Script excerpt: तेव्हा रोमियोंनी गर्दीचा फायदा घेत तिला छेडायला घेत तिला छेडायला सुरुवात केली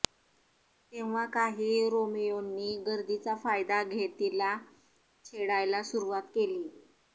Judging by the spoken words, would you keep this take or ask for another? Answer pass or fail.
fail